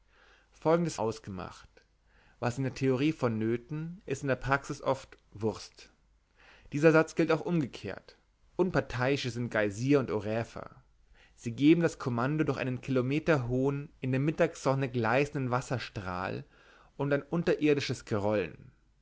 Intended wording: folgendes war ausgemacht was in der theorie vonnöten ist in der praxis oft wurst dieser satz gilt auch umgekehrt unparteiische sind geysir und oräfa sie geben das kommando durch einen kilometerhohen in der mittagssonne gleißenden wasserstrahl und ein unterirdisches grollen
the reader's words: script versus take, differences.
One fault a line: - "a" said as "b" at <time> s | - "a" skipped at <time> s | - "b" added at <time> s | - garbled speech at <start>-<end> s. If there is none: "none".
- "war" skipped at 1.0 s